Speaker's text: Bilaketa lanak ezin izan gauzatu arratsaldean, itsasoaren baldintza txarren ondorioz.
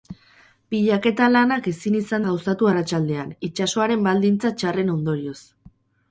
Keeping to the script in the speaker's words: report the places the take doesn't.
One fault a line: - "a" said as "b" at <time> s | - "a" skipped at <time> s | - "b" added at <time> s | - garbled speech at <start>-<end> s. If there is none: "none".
none